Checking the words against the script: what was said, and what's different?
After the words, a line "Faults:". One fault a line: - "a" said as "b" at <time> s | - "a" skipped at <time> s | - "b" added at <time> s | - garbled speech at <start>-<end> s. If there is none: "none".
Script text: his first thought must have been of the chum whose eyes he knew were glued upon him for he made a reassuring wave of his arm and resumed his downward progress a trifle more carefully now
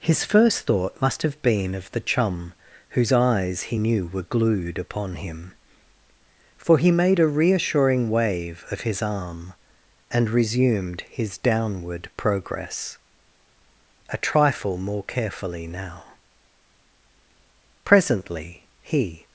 his first thought must have been of the chum whose eyes he knew were glued upon him for he made a reassuring wave of his arm and resumed his downward progress a trifle more carefully now presently he
Faults:
- "presently he" added at 17.9 s